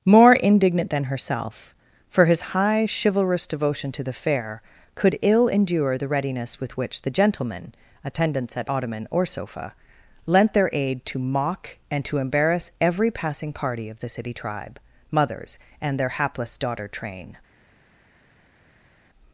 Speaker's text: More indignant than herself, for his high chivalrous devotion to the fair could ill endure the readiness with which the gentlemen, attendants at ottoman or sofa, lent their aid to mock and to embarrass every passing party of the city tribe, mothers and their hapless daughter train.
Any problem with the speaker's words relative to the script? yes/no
no